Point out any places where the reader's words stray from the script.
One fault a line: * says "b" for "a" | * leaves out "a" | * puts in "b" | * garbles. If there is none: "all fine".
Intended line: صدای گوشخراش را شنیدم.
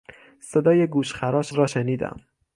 all fine